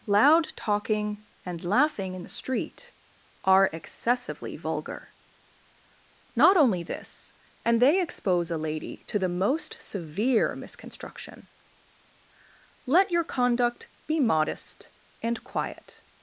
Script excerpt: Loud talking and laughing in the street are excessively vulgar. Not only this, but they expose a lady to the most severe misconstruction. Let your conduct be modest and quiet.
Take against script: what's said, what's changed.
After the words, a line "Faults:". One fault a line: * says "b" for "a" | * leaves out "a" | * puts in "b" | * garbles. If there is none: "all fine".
Loud talking and laughing in the street are excessively vulgar. Not only this, and they expose a lady to the most severe misconstruction. Let your conduct be modest and quiet.
Faults:
* says "and" for "but"